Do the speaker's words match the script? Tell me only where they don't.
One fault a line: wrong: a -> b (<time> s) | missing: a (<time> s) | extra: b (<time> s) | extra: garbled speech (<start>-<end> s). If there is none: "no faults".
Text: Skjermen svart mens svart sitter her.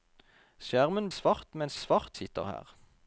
no faults